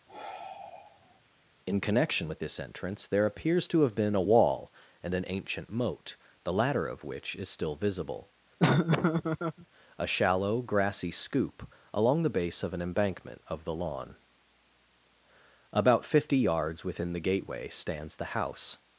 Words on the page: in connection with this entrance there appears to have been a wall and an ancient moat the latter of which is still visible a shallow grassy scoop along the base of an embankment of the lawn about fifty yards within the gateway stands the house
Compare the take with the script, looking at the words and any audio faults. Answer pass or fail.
fail